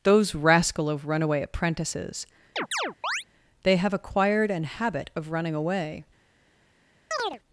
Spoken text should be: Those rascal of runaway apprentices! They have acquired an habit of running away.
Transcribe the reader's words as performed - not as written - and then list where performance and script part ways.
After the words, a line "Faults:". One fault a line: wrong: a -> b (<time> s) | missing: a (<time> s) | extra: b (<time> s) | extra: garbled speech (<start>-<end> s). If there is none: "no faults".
Those rascal of runaway apprentices! They have acquired an habit of running away.
Faults:
no faults